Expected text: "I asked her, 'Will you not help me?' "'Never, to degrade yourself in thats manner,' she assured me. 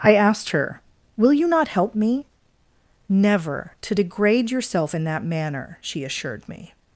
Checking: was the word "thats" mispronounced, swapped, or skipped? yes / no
yes